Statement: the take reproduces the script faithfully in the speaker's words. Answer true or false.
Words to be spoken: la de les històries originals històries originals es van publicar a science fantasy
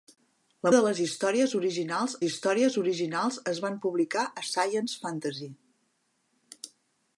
true